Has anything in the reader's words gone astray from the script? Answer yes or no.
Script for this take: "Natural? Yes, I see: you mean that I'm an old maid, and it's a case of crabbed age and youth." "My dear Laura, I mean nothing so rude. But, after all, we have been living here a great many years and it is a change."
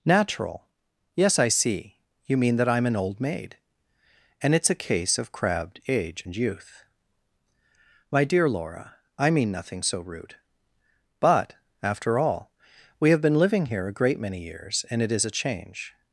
no